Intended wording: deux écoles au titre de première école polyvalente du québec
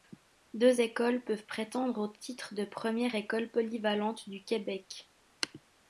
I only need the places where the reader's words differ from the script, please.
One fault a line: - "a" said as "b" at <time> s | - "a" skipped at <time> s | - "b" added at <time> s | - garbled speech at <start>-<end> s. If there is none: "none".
- "peuvent prétendre" added at 1.2 s